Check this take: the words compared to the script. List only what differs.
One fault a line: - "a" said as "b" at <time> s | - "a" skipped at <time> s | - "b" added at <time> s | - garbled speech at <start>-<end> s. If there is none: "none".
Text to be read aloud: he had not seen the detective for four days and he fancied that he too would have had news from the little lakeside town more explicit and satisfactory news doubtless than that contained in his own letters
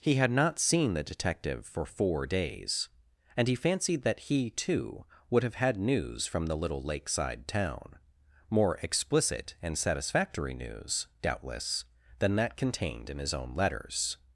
none